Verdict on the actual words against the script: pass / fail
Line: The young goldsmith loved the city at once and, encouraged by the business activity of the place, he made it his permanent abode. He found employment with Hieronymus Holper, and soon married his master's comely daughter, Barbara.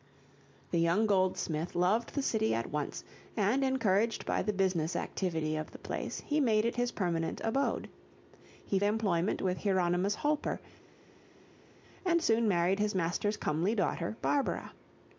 fail